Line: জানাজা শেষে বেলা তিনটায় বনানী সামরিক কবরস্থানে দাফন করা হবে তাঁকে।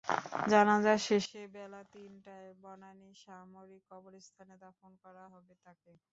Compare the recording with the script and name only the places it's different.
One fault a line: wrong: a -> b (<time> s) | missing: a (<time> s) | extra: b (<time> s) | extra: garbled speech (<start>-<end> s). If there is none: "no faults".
no faults